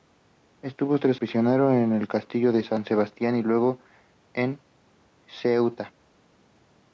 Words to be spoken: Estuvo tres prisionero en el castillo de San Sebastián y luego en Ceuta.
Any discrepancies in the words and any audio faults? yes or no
no